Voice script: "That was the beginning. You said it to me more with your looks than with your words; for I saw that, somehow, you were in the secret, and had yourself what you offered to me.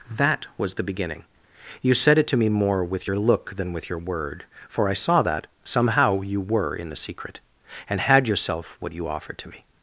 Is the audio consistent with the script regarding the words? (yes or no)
no